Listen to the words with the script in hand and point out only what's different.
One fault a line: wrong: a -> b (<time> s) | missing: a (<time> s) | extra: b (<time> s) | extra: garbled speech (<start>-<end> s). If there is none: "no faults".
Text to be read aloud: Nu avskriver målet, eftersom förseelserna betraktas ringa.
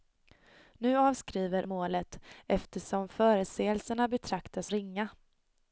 no faults